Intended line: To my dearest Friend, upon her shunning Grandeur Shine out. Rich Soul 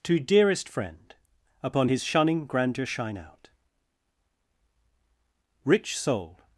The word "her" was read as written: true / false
false